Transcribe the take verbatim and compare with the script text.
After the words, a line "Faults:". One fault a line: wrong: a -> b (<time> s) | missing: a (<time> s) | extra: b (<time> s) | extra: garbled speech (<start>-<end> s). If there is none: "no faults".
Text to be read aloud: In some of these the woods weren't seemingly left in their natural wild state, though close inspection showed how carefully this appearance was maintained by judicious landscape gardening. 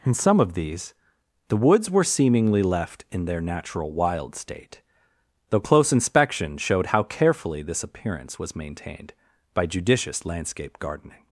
In some of these the woods were seemingly left in their natural wild state, though close inspection showed how carefully this appearance was maintained by judicious landscape gardening.
Faults:
wrong: weren't -> were (1.9 s)